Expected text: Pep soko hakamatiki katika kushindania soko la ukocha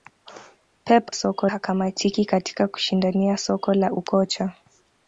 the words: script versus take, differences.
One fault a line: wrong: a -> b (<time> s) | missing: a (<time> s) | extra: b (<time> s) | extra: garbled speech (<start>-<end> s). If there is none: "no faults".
no faults